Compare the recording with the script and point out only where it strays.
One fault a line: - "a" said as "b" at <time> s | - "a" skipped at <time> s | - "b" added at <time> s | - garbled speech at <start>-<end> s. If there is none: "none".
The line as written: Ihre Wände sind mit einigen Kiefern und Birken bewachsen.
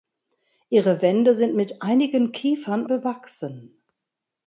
- "und Birken" skipped at 2.9 s